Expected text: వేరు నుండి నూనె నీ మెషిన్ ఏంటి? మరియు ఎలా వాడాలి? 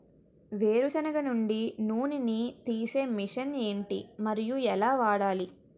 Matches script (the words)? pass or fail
fail